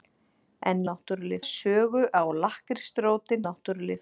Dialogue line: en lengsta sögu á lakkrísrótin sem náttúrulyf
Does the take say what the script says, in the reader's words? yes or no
no